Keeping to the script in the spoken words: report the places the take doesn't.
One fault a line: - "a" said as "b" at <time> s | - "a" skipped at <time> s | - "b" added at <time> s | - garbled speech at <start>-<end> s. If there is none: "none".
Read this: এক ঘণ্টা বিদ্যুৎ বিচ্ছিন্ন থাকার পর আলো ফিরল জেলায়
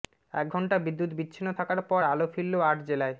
- "আট" added at 2.6 s